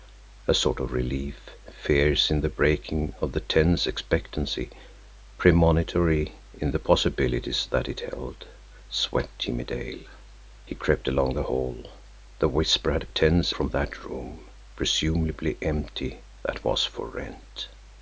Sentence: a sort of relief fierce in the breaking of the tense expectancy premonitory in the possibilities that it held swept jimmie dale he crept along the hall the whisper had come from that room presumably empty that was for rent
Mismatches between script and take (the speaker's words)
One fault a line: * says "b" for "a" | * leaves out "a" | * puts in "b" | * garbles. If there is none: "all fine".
* says "tense" for "come"